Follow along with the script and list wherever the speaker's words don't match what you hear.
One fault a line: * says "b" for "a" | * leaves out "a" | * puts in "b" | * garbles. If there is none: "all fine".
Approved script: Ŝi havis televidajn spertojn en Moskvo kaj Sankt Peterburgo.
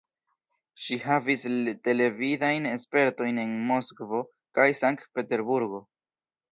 all fine